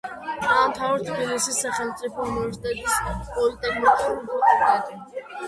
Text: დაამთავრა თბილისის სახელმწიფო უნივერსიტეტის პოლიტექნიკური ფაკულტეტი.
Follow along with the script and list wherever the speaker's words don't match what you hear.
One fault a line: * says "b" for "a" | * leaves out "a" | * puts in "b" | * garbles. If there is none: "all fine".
all fine